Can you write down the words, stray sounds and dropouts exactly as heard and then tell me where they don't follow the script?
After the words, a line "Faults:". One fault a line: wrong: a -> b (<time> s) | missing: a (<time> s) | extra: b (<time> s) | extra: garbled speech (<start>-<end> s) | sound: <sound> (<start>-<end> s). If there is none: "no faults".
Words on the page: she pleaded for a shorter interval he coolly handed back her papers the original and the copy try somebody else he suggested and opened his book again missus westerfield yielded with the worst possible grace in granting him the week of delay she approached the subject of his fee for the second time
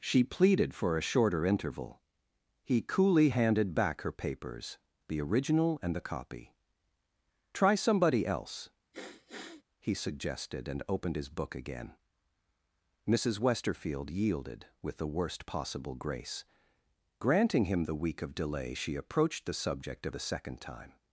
she pleaded for a shorter interval he coolly handed back her papers the original and the copy try somebody else he suggested and opened his book again missus westerfield yielded with the worst possible grace granting him the week of delay she approached the subject of the second time
Faults:
sound: sniff (8.9-9.6 s)
missing: in (16.5 s)
missing: his fee for (20.1 s)